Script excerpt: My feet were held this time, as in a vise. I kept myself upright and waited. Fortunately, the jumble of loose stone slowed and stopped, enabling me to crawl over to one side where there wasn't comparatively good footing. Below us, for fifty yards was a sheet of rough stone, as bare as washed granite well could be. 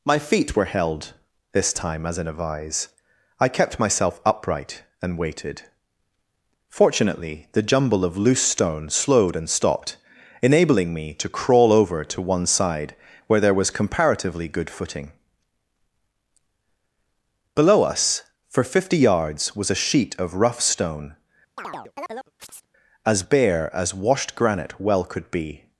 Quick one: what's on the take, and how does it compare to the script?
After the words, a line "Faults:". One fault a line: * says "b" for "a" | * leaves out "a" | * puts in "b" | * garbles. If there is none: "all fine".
My feet were held this time, as in a vise. I kept myself upright and waited. Fortunately, the jumble of loose stone slowed and stopped, enabling me to crawl over to one side where there was comparatively good footing. Below us, for fifty yards was a sheet of rough stone, as bare as washed granite well could be.
Faults:
* says "was" for "wasn't"